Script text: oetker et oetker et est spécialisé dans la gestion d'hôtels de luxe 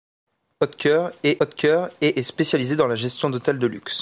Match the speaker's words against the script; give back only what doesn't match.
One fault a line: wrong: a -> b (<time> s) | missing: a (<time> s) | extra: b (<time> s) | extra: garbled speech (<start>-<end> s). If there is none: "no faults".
no faults